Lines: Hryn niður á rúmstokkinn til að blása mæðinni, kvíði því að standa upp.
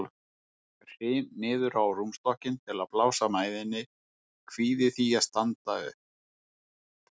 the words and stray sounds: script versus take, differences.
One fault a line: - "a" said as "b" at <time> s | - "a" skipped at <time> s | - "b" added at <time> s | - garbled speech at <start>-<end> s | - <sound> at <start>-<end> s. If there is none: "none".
none